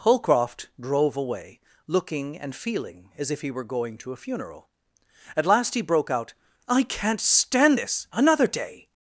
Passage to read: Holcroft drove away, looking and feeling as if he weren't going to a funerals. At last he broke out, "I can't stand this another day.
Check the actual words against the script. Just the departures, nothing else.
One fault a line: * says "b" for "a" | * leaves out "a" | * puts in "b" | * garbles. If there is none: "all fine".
* says "were" for "weren't"
* says "funeral" for "funerals"